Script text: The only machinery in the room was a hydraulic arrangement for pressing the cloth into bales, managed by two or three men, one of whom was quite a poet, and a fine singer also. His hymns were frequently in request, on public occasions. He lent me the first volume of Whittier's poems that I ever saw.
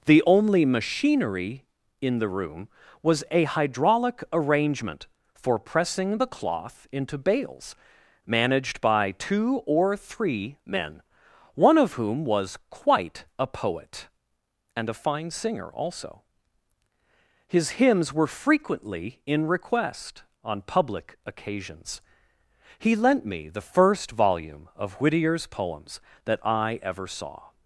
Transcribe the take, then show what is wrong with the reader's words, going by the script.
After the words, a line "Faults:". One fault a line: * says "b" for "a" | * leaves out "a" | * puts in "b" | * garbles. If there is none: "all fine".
The only machinery in the room was a hydraulic arrangement for pressing the cloth into bales, managed by two or three men, one of whom was quite a poet, and a fine singer also. His hymns were frequently in request, on public occasions. He lent me the first volume of Whittier's poems that I ever saw.
Faults:
all fine